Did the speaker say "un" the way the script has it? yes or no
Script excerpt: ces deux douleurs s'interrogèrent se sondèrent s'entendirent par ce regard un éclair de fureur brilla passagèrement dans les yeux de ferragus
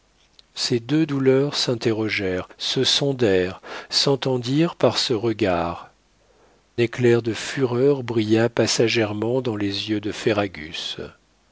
no